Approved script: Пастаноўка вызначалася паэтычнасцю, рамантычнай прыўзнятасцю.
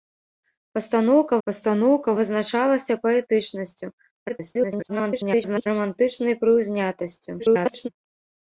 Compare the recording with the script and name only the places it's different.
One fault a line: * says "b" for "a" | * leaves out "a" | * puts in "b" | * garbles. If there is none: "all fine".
* puts in "пастаноўка"
* garbles
* garbles